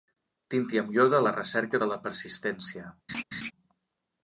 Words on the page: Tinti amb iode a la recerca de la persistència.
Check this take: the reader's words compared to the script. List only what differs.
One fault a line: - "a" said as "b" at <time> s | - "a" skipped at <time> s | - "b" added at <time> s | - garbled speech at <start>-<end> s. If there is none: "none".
none